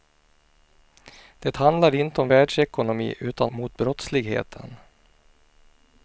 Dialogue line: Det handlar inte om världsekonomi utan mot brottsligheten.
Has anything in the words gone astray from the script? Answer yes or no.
no